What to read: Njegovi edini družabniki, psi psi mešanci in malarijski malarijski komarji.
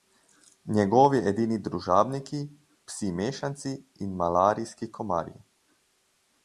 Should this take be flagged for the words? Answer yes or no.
yes